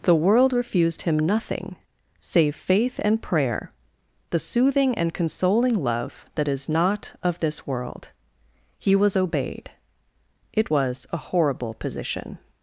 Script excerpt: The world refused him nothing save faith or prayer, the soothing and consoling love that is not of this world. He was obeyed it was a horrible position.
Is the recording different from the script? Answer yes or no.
yes